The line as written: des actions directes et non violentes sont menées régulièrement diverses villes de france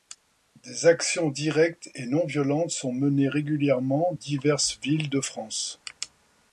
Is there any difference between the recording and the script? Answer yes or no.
no